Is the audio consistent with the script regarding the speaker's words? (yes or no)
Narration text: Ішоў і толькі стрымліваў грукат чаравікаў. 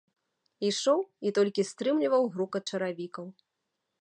yes